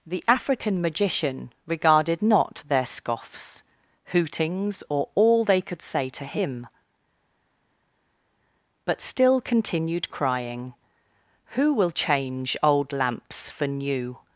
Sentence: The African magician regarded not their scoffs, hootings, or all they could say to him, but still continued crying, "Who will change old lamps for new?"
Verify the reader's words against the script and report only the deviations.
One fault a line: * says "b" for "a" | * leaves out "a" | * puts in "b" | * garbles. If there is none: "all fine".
all fine